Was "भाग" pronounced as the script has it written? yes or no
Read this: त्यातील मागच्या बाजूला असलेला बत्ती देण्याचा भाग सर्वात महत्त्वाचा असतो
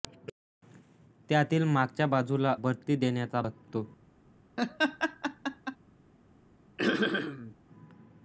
no